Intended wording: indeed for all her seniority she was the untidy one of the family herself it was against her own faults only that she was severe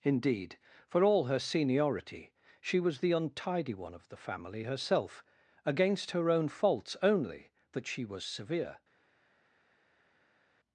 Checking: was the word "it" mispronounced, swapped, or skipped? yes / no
yes